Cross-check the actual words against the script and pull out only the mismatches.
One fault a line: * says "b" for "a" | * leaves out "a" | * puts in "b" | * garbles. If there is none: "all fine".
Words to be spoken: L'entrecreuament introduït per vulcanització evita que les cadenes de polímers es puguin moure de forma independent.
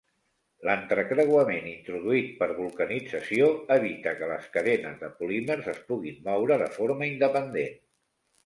all fine